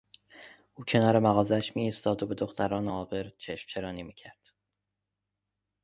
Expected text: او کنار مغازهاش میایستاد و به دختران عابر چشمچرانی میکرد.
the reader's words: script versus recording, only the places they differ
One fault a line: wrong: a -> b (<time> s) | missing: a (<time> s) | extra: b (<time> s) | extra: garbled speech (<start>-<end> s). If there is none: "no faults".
no faults